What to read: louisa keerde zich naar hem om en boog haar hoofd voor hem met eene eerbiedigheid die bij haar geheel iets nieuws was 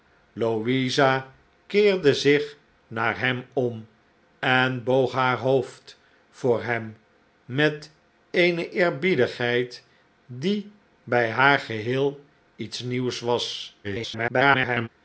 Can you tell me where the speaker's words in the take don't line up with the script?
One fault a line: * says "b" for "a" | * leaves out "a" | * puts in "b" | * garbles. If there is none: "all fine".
* garbles